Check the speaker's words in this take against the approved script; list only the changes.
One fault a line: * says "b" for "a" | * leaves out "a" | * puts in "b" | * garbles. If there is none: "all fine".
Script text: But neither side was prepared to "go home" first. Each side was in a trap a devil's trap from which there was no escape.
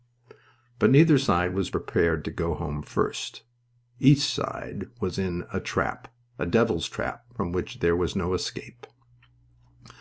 all fine